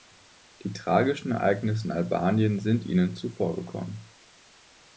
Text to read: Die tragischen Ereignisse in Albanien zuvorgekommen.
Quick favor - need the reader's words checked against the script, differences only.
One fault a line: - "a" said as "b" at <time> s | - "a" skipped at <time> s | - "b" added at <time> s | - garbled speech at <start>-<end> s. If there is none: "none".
- "sind Ihnen" added at 2.6 s